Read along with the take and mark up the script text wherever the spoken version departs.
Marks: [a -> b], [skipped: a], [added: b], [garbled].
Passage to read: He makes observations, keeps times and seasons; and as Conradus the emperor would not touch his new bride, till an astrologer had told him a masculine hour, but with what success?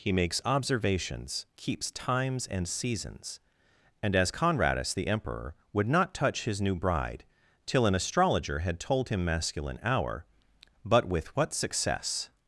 He makes observations, keeps times and seasons; and as Conradus the emperor would not touch his new bride, till an astrologer had told him [skipped: a] masculine hour, but with what success?